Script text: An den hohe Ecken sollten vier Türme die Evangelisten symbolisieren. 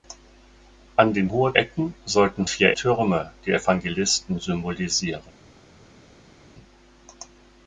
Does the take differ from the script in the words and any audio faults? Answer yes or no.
no